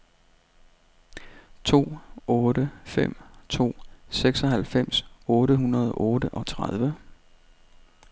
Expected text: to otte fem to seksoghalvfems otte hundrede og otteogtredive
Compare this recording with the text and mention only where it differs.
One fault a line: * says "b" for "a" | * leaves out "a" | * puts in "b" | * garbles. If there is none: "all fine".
all fine